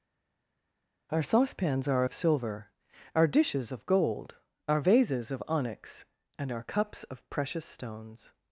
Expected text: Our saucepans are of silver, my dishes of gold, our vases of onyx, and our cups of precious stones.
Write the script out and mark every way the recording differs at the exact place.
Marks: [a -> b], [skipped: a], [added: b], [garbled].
Our saucepans are of silver, [my -> our] dishes of gold, our vases of onyx, and our cups of precious stones.